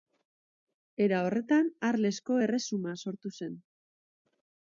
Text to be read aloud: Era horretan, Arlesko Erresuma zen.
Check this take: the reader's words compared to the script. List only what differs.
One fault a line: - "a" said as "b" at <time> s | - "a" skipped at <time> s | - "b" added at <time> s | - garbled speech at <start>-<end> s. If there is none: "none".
- "sortu" added at 3.1 s